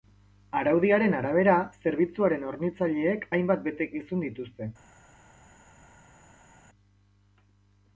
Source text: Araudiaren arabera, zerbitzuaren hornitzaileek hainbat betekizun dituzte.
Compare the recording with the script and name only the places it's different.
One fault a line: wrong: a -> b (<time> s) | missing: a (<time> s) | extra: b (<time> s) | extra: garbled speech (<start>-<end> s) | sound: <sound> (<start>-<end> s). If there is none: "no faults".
no faults